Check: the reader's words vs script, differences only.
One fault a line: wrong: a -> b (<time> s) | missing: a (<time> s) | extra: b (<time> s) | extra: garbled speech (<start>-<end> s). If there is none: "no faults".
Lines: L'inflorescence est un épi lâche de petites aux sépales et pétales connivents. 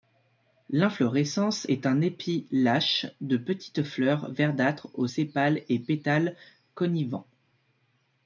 extra: fleurs verdâtres (3.8 s)